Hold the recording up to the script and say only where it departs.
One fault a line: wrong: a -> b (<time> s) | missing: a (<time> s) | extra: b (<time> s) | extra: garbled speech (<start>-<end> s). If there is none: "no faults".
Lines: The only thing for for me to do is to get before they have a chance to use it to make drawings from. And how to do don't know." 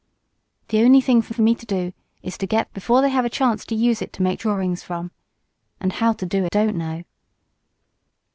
no faults